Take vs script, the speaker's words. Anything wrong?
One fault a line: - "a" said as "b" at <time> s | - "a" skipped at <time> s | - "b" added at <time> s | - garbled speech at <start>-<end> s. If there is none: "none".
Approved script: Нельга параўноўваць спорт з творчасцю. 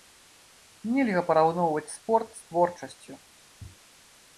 none